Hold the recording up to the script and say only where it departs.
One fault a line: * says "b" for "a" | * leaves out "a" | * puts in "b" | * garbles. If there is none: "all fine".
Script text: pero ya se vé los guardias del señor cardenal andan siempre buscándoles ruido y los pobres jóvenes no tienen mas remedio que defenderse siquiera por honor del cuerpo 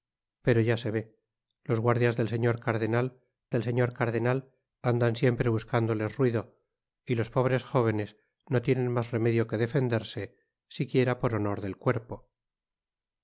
* puts in "del señor cardenal"